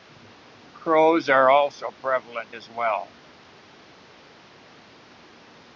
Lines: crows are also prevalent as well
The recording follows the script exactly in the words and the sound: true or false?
true